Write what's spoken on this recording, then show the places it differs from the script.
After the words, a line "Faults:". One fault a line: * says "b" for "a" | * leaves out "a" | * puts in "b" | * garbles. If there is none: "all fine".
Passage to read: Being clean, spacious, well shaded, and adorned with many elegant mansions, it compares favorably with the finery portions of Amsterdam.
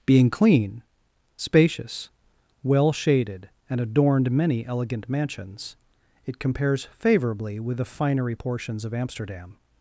Being clean, spacious, well shaded, and adorned many elegant mansions, it compares favorably with the finery portions of Amsterdam.
Faults:
* leaves out "with"